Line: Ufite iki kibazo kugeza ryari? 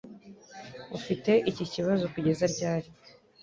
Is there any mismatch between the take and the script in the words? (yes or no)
no